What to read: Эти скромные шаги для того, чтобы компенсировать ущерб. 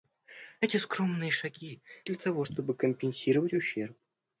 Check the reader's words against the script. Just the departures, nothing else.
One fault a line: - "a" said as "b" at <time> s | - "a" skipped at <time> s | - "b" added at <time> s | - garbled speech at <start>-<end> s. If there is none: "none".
none